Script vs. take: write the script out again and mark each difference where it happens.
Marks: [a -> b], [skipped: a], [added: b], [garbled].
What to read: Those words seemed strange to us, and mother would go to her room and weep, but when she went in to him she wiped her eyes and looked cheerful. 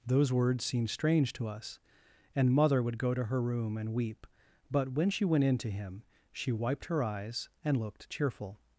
Those words seemed strange to us, and mother would go to her room and weep, but when she went in to him she wiped her eyes and looked cheerful.